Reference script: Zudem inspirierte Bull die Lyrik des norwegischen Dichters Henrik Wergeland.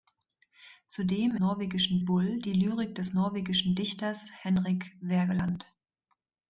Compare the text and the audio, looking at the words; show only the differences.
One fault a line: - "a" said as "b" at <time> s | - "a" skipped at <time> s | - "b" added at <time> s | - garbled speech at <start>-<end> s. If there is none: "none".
- "inspirierte" said as "norwegischen" at 1.4 s